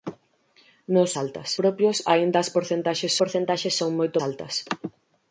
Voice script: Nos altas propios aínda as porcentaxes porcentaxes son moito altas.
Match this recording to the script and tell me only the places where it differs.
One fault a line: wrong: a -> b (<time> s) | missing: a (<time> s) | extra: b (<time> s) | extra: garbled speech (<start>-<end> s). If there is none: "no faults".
no faults